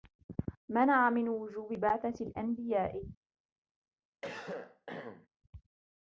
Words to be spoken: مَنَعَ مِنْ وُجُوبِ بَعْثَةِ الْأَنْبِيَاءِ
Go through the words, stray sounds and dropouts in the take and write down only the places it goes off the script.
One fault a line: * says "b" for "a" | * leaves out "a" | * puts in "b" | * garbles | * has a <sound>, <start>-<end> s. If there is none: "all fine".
* has a cough, 4.2-5.3 s